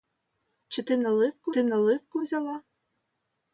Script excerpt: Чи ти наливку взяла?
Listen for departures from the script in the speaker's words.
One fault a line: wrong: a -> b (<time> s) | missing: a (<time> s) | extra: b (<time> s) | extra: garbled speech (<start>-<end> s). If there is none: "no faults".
extra: ти наливку (1.5 s)